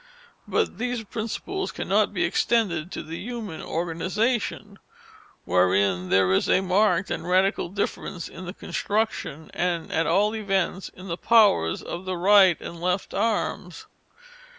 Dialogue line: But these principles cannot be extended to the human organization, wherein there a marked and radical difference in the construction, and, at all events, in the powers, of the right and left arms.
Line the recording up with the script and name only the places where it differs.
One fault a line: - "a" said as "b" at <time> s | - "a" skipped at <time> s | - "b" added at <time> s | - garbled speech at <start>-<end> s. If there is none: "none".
- "is" added at 6.3 s